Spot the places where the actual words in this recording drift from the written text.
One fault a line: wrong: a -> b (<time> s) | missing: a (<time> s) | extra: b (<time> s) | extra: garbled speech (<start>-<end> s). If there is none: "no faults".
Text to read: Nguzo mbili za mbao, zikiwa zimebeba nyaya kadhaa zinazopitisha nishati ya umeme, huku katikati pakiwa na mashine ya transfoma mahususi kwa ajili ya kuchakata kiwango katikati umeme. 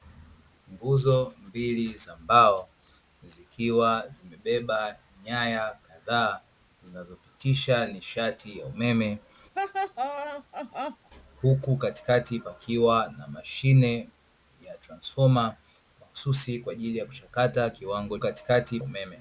no faults